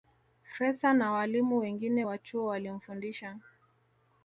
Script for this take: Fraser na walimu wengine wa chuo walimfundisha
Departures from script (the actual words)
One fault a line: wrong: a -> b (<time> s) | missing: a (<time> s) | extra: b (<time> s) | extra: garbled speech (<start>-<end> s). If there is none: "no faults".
no faults